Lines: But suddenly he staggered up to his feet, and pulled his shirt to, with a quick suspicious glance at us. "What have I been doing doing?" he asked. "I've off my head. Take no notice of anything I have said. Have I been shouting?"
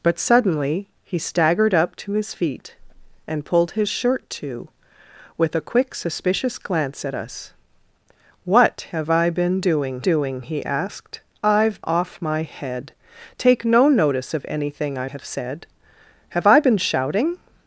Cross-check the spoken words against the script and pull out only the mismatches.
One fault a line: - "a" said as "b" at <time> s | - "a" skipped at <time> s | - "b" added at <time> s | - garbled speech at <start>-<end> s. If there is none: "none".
none